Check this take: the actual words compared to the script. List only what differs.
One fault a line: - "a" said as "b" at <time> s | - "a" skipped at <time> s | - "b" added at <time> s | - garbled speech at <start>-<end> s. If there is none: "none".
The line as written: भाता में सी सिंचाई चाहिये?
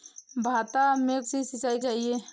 none